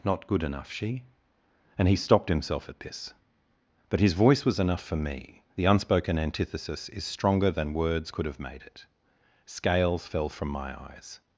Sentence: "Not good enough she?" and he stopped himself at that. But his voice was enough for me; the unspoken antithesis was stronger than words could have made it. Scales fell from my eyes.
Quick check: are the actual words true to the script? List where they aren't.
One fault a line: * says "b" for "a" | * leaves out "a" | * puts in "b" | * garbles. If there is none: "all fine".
* says "this" for "that"
* says "is" for "was"